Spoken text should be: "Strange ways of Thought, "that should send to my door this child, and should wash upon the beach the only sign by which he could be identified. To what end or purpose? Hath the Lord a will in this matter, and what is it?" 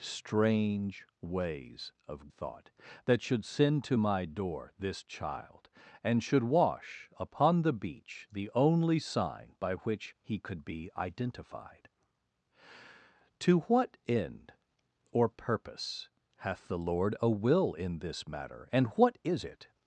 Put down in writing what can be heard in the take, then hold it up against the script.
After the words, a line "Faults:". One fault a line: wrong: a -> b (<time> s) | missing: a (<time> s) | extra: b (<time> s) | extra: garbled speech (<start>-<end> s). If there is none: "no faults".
"Strange ways of Thought, "that should send to my door this child, and should wash upon the beach the only sign by which he could be identified. To what end or purpose? Hath the Lord a will in this matter, and what is it?"
Faults:
no faults